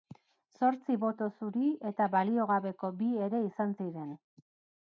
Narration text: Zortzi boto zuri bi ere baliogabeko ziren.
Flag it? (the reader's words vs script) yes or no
yes